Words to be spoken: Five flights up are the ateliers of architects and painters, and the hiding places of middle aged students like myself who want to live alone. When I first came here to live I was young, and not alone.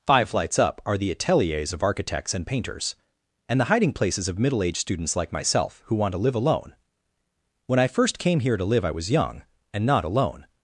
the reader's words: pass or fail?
pass